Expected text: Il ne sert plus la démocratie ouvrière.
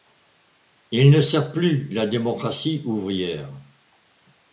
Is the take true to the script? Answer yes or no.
yes